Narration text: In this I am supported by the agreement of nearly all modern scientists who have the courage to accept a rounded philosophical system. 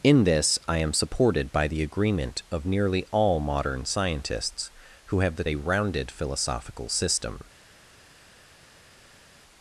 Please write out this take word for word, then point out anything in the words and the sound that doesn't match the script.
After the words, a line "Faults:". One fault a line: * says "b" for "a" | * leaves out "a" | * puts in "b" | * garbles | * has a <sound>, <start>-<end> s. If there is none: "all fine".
In this I am supported by the agreement of nearly all modern scientists who have the a rounded philosophical system.
Faults:
* leaves out "courage to accept"